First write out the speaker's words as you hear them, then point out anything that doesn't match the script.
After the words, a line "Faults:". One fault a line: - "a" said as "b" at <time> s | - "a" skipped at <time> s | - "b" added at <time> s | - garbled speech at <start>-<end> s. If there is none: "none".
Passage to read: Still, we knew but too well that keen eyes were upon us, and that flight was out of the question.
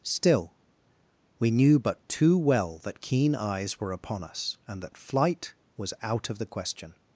Still, we knew but too well that keen eyes were upon us, and that flight was out of the question.
Faults:
none